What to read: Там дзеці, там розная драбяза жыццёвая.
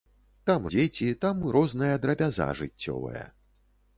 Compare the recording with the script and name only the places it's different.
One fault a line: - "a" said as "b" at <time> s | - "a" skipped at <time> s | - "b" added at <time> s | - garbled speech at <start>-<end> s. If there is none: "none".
none